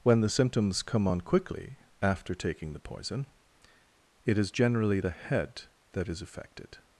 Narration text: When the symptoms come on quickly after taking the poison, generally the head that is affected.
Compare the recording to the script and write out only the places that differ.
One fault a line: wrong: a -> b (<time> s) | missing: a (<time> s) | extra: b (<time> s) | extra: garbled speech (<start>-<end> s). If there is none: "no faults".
extra: it is (4.2 s)